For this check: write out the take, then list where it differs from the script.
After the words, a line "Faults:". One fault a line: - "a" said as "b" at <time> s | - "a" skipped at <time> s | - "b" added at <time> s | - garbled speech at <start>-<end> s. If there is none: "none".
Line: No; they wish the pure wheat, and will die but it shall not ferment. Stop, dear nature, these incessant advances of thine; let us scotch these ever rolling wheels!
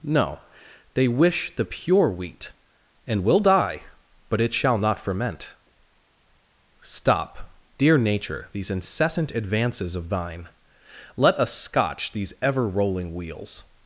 No; they wish the pure wheat, and will die but it shall not ferment. Stop, dear nature, these incessant advances of thine; let us scotch these ever rolling wheels!
Faults:
none